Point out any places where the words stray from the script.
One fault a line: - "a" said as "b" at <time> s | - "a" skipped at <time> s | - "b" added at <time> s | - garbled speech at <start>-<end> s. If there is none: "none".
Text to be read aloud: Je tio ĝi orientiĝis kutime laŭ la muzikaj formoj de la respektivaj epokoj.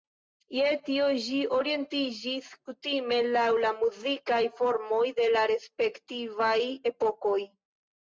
none